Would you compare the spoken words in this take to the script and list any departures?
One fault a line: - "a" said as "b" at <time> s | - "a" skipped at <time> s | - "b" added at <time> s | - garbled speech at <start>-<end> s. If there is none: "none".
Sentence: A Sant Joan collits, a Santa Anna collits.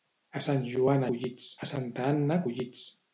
none